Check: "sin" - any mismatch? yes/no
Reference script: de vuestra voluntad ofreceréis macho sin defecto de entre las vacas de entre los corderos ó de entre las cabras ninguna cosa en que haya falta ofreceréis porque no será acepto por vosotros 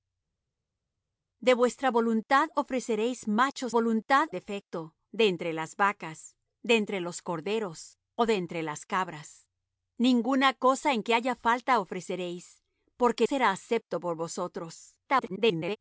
yes